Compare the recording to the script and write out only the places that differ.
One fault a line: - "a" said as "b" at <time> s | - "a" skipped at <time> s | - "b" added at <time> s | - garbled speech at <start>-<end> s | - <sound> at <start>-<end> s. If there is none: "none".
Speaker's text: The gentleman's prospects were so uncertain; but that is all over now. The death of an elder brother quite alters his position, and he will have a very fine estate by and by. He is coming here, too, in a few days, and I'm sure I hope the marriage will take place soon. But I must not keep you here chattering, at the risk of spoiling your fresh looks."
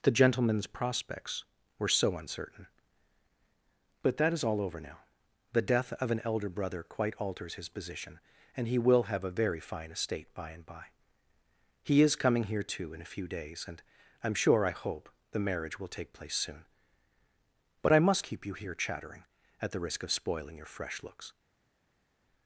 - "not" skipped at 18.2 s